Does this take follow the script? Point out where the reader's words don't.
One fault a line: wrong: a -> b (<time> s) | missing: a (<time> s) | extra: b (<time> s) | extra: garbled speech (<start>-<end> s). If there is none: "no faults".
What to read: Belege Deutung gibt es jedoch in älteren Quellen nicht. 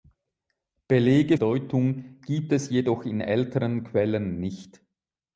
no faults